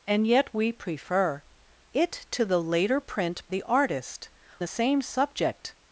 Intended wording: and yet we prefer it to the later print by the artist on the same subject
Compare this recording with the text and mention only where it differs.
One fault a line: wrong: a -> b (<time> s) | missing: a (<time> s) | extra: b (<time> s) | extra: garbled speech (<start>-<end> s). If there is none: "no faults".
missing: by (3.5 s)
missing: on (4.3 s)